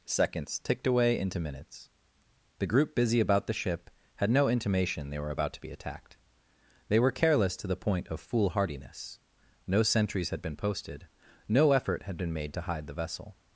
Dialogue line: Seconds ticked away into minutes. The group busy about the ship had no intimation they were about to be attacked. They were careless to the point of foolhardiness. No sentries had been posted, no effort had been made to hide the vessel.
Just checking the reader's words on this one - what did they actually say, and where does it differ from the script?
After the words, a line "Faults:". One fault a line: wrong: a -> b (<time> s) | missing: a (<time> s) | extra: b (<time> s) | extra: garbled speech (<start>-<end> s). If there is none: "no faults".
Seconds ticked away into minutes. The group busy about the ship had no intimation they were about to be attacked. They were careless to the point of foolhardiness. No sentries had been posted, no effort had been made to hide the vessel.
Faults:
no faults